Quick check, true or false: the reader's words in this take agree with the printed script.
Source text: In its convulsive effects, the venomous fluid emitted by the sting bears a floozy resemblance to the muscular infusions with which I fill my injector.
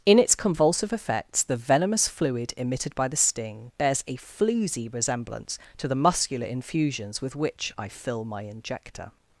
true